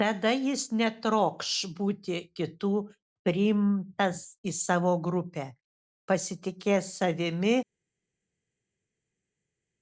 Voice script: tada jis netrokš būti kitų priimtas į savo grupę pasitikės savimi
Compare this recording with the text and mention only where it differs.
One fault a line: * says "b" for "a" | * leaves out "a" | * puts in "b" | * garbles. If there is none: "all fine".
all fine